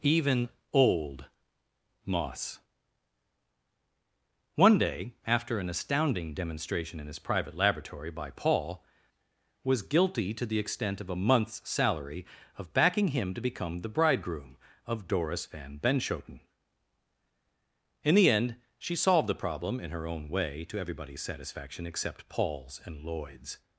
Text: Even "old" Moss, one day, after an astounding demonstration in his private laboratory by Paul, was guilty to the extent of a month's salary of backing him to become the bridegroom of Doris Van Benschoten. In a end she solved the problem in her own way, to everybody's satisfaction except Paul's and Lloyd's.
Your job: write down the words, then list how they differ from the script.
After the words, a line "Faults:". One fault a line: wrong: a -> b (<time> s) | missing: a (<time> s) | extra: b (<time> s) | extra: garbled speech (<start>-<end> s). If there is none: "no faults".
Even "old" Moss, one day, after an astounding demonstration in his private laboratory by Paul, was guilty to the extent of a month's salary of backing him to become the bridegroom of Doris Van Benschoten. In the end she solved the problem in her own way, to everybody's satisfaction except Paul's and Lloyd's.
Faults:
wrong: a -> the (18.1 s)